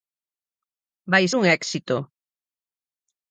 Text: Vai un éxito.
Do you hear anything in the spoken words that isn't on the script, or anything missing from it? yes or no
no